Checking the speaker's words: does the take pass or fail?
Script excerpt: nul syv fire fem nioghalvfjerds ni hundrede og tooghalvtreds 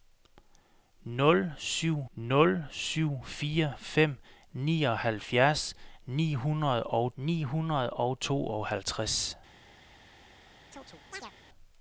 fail